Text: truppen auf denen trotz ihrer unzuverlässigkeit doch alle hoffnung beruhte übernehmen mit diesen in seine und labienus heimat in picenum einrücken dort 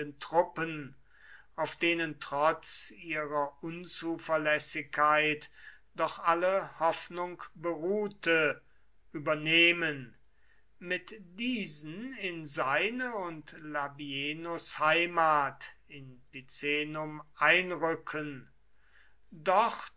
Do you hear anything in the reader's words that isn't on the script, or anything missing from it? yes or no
no